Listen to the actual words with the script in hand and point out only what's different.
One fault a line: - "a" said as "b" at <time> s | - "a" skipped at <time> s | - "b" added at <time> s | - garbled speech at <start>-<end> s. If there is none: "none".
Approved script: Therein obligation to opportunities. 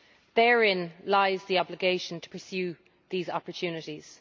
- "lies the" added at 1.1 s
- "pursue these" added at 2.3 s